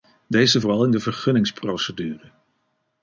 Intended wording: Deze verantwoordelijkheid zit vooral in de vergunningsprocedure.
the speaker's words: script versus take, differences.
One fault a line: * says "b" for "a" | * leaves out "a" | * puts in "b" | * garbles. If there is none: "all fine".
* leaves out "verantwoordelijkheid zit"